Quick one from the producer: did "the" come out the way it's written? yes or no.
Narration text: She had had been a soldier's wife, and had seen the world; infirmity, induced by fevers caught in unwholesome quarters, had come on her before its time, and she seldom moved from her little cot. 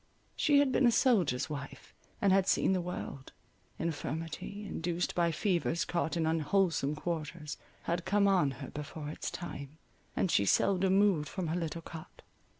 yes